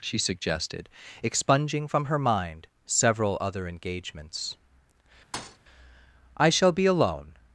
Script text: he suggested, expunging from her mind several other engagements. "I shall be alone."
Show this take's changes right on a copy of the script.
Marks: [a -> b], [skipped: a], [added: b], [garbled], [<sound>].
[he -> she] suggested, expunging from her mind several other engagements. [thud] "I shall be alone."